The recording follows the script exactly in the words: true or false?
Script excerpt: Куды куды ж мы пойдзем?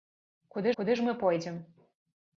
true